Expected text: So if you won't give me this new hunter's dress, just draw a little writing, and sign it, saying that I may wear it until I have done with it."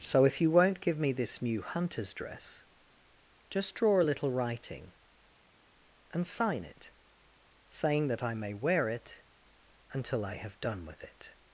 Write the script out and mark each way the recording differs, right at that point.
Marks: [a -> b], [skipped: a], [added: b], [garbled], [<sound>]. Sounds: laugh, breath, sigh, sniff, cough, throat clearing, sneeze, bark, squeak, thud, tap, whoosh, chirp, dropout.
So if you won't give me this new hunter's dress, just draw a little writing, and sign it, saying that I may wear it until I have done with it."